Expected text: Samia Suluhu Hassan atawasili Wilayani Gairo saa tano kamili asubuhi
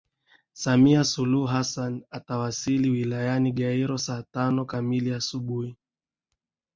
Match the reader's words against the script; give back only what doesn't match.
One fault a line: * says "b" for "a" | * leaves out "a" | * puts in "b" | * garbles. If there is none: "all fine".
all fine